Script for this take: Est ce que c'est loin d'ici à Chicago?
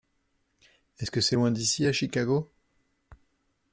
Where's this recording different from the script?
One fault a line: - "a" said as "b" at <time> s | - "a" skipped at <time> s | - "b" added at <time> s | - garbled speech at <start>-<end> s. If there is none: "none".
none